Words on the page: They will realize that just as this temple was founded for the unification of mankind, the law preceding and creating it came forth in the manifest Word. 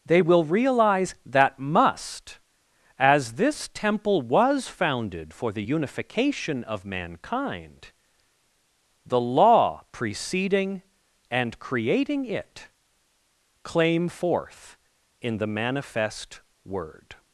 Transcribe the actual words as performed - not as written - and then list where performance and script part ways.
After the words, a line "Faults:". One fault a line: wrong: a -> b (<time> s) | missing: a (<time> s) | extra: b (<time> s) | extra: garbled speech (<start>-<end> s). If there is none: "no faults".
They will realize that must as this temple was founded for the unification of mankind, the law preceding and creating it claim forth in the manifest Word.
Faults:
wrong: just -> must (1.6 s)
wrong: came -> claim (13.6 s)